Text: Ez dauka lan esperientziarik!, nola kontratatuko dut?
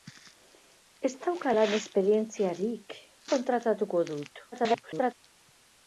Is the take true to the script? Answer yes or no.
no